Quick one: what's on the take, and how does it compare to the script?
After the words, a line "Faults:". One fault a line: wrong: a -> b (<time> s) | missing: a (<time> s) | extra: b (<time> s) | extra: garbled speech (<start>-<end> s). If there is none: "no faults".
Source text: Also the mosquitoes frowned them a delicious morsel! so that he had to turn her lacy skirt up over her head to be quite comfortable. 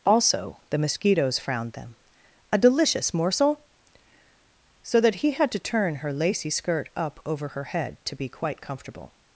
Also the mosquitoes frowned them a delicious morsel! so that he had to turn her lacy skirt up over her head to be quite comfortable.
Faults:
no faults